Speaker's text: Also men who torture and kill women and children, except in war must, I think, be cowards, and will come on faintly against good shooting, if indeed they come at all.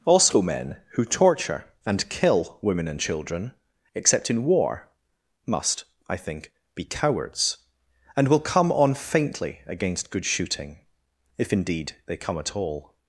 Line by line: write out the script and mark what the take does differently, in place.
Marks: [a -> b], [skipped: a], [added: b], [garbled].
Also men who torture and kill women and children, except in war must, I think, be cowards, and will come on faintly against good shooting, if indeed they come at all.